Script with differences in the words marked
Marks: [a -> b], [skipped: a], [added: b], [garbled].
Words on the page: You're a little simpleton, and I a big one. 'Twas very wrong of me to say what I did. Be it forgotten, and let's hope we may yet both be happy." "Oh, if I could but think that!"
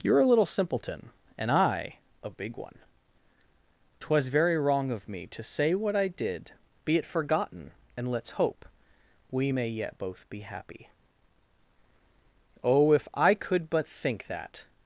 You're a little simpleton, and I a big one. 'Twas very wrong of me to say what I did. Be it forgotten, and let's hope we may yet both be happy." "Oh, if I could but think that!"